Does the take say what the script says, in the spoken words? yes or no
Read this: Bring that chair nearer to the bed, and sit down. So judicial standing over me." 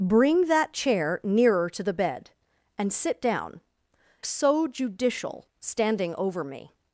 yes